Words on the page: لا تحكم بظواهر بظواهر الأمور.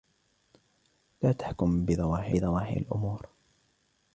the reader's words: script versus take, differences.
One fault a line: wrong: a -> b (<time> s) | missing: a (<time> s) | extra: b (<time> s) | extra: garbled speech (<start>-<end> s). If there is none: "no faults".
no faults